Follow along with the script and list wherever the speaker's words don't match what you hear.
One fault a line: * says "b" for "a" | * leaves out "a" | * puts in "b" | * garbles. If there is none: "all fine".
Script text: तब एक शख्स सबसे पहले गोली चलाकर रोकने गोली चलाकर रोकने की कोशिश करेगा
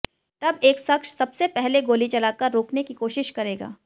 * leaves out "गोली चलाकर रोकने"